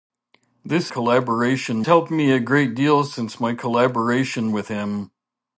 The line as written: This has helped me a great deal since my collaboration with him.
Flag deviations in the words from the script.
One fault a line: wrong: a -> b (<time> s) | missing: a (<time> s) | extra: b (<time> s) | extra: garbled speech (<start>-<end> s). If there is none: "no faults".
wrong: has -> collaboration (0.9 s)